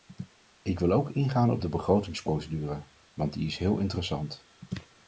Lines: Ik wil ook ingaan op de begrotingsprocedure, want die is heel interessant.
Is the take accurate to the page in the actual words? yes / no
yes